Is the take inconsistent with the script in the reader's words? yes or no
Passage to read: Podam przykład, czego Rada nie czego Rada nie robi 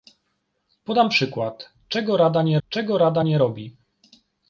no